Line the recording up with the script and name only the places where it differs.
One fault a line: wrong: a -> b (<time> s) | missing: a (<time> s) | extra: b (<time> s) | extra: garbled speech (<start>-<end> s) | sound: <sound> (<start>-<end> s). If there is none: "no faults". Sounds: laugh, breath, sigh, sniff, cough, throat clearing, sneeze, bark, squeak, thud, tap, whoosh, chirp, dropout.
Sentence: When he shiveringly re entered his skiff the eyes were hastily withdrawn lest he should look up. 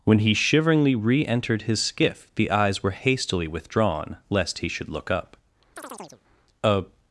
sound: chirp (5.8-6.2 s)
extra: A (6.6 s)